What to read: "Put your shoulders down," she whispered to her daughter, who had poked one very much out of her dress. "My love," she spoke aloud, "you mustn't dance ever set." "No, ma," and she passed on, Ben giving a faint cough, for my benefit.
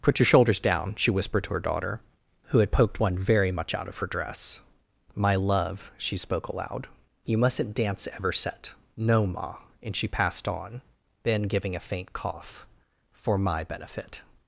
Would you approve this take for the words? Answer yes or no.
yes